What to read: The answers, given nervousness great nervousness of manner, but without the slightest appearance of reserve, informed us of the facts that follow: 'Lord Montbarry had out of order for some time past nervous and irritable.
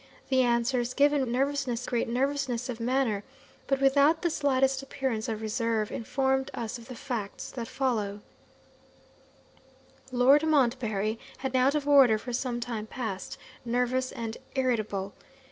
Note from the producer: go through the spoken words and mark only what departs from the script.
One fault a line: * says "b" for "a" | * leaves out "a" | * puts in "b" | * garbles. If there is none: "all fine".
all fine